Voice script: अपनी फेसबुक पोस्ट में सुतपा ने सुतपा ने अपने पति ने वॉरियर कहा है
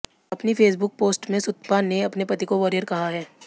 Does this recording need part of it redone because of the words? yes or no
yes